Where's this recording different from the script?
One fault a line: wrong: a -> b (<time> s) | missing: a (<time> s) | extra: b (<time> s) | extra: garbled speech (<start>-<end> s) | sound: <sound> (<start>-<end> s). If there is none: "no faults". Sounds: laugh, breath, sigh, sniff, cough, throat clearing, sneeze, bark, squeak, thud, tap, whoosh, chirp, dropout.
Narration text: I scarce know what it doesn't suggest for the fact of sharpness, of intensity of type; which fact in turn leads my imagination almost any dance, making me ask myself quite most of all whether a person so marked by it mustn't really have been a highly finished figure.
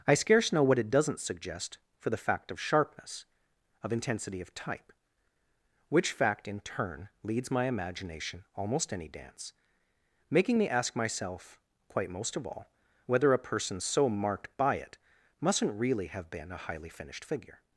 no faults